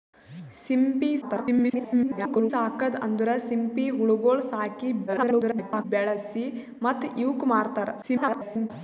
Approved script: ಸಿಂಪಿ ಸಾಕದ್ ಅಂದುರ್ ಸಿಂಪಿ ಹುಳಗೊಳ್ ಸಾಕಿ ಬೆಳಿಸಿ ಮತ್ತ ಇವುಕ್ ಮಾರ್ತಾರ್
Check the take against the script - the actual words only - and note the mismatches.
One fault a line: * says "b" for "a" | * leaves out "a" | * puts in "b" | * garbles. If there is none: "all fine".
* garbles
* garbles
* garbles